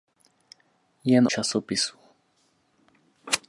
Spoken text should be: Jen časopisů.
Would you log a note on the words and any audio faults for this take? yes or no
no